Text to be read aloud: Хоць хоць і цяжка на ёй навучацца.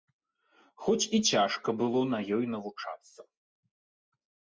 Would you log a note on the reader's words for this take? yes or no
yes